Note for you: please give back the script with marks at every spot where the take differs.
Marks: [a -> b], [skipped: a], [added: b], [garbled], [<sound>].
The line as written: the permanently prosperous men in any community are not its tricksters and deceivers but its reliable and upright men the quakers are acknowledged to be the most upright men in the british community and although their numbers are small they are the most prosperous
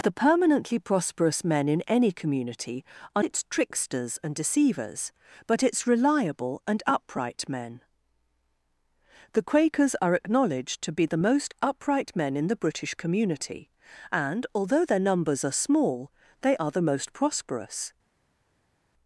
the permanently prosperous men in any community are [skipped: not] its tricksters and deceivers but its reliable and upright men the quakers are acknowledged to be the most upright men in the british community and although their numbers are small they are the most prosperous